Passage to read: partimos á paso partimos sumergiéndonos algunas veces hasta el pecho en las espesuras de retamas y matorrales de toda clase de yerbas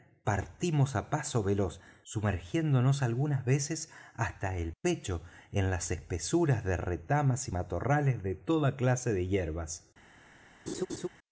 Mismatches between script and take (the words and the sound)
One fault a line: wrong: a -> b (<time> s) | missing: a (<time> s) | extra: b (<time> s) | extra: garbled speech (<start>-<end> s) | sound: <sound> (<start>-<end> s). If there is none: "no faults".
wrong: partimos -> veloz (1.4 s)
sound: laugh (10.7-11.1 s)